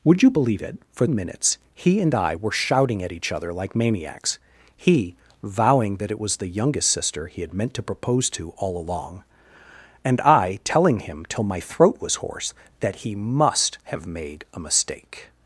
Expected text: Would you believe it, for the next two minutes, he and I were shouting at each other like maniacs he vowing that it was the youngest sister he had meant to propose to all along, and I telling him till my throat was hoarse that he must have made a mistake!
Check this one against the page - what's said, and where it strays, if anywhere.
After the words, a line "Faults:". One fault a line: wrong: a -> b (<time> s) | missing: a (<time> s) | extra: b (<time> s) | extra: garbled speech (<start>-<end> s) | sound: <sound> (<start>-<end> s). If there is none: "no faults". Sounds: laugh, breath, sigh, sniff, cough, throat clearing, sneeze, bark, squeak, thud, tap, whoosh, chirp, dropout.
Would you believe it, for minutes, he and I were shouting at each other like maniacs he vowing that it was the youngest sister he had meant to propose to all along, and I telling him till my throat was hoarse that he must have made a mistake!
Faults:
missing: the next two (1.1 s)